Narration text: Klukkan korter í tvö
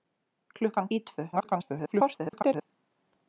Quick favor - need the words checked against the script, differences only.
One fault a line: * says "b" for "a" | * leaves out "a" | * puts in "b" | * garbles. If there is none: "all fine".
* leaves out "korter"
* garbles